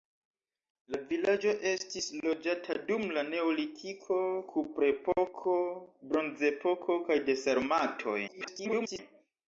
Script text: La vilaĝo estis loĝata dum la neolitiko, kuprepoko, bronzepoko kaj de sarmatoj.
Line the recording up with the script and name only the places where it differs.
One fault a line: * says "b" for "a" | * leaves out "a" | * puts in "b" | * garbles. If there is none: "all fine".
* garbles